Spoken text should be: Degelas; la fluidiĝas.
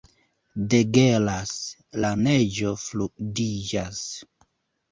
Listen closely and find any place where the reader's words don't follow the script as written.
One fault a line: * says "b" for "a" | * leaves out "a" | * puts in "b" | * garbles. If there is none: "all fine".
* puts in "neĝo"